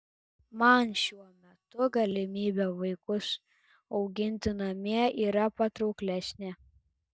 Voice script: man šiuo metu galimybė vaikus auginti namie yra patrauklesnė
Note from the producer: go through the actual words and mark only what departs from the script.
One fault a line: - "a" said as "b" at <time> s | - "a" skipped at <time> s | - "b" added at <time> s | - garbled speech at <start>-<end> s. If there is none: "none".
none